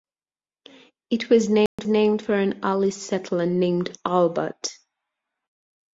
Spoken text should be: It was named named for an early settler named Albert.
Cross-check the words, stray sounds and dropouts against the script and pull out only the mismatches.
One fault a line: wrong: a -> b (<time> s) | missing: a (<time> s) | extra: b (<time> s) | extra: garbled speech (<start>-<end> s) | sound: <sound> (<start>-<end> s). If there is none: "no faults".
sound: dropout (1.7-1.8 s)